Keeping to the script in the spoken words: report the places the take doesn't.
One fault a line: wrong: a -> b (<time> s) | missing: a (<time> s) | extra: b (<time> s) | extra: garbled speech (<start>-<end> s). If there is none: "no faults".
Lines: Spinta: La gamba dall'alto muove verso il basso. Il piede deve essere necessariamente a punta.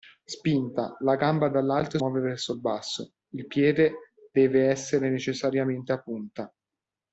no faults